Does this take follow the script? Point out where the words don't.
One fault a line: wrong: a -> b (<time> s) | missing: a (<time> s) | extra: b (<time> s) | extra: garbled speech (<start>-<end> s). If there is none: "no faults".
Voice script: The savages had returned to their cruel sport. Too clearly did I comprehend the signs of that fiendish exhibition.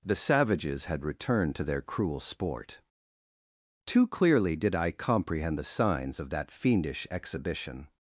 no faults